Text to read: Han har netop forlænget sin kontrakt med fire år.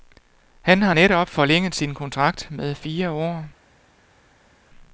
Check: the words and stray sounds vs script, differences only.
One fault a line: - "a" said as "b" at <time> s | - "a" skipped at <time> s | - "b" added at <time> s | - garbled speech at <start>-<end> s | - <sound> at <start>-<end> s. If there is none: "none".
none